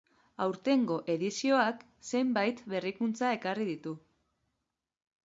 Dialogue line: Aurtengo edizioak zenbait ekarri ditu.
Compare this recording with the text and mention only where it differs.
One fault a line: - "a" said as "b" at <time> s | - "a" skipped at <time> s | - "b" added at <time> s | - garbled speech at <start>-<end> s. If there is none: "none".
- "berrikuntza" added at 2.7 s